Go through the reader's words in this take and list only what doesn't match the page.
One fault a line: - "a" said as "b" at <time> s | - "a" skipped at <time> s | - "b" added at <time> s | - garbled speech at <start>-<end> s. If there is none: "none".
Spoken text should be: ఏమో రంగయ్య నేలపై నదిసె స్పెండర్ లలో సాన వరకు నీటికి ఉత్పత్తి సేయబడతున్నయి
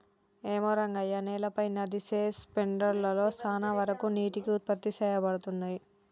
none